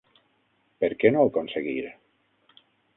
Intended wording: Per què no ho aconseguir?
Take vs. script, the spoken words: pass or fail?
pass